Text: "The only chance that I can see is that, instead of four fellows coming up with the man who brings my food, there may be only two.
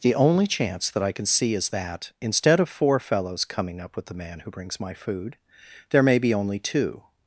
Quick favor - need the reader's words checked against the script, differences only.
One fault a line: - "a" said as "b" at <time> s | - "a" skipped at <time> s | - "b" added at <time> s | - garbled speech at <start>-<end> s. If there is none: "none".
none